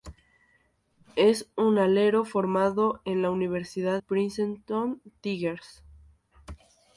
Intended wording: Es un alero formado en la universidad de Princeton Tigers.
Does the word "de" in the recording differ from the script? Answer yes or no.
yes